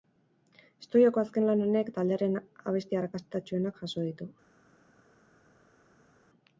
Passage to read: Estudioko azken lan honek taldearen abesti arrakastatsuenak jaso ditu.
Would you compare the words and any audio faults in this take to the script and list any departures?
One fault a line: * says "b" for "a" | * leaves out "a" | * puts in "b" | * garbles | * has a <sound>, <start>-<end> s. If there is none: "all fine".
all fine